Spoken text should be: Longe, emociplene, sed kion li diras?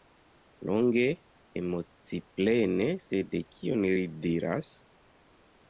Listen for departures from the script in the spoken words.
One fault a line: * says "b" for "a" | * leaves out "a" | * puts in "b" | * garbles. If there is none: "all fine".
all fine